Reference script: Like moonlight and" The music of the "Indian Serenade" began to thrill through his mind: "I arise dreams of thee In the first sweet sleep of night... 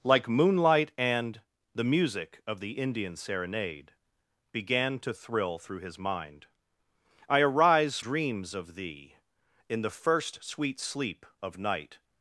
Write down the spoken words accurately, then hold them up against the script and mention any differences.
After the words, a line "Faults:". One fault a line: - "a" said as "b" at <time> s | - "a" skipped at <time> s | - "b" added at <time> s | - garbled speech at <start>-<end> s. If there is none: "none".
Like moonlight and" The music of the "Indian Serenade" began to thrill through his mind: "I arise dreams of thee In the first sweet sleep of night...
Faults:
none